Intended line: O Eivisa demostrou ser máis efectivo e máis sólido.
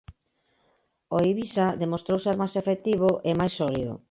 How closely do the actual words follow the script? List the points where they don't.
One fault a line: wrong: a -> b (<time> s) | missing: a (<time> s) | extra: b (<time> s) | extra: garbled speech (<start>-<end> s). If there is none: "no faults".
no faults